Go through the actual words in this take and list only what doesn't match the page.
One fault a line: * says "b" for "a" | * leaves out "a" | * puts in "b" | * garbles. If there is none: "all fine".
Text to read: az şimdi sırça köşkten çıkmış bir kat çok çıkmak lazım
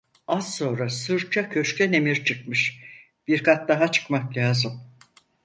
* says "sonra" for "şimdi"
* puts in "emir"
* says "daha" for "çok"